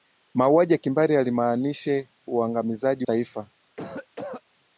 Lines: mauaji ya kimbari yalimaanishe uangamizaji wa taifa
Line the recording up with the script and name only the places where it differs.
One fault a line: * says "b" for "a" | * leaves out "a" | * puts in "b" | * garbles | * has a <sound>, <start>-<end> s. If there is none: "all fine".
* leaves out "wa"
* has a cough, 3.8-4.4 s